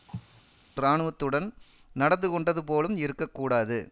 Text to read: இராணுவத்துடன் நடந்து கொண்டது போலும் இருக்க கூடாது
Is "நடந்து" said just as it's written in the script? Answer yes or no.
yes